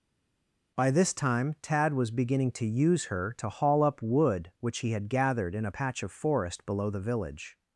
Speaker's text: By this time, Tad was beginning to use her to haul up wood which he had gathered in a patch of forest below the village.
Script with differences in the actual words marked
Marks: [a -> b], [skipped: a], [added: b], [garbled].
By this time, Tad was beginning to use her to haul up wood which he had gathered in a patch of forest below the village.